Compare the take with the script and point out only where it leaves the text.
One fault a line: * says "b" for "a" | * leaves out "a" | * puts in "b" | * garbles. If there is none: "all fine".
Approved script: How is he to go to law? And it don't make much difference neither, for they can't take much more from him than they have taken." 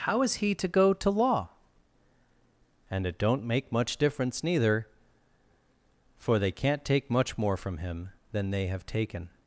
all fine